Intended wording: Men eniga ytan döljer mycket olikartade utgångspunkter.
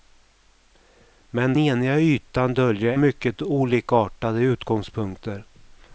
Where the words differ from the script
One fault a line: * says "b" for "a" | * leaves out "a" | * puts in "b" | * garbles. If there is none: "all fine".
all fine